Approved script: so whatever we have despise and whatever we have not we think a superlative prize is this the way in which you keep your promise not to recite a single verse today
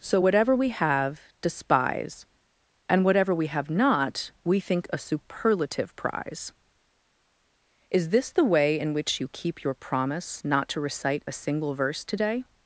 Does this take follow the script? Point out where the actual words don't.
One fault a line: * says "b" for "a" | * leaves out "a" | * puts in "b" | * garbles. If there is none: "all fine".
all fine